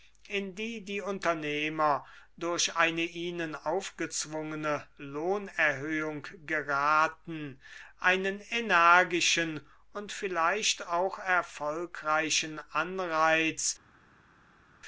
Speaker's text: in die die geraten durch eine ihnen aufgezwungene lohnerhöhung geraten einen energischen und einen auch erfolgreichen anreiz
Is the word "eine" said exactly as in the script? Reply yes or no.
yes